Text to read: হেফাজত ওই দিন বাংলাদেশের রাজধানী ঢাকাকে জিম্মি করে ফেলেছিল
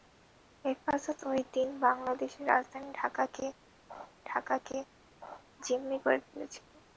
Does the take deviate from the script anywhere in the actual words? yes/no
yes